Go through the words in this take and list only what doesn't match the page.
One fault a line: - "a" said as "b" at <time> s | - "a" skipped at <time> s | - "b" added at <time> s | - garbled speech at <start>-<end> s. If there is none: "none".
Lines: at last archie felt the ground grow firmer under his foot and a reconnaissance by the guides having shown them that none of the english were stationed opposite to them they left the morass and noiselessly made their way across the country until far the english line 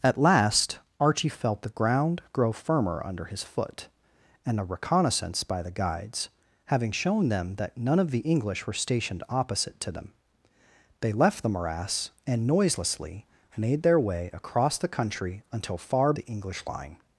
none